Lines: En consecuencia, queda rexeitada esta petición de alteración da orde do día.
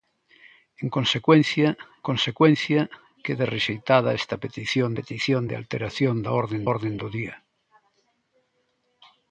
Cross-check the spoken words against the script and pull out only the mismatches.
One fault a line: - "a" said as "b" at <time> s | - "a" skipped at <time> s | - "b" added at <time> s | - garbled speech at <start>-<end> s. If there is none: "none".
- "consecuencia" added at 2.1 s
- "petición" added at 5.0 s
- "orde" added at 6.7 s